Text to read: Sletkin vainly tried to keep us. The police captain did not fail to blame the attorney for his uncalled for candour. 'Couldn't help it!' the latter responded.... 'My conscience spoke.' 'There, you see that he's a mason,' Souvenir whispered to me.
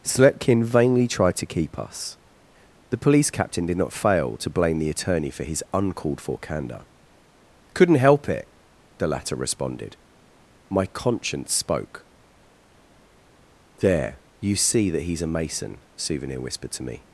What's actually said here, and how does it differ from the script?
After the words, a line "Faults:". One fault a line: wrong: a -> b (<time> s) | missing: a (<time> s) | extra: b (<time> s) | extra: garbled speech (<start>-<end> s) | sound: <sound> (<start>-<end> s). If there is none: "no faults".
Sletkin vainly tried to keep us. The police captain did not fail to blame the attorney for his uncalled for candour. 'Couldn't help it!' the latter responded.... 'My conscience spoke.' 'There, you see that he's a mason,' Souvenir whispered to me.
Faults:
no faults